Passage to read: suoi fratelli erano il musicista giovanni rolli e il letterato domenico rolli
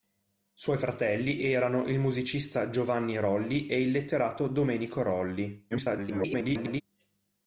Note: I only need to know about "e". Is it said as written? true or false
true